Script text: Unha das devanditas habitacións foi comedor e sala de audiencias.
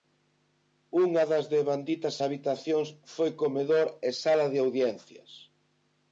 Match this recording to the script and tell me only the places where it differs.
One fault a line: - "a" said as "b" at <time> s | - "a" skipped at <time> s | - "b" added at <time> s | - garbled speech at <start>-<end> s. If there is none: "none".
none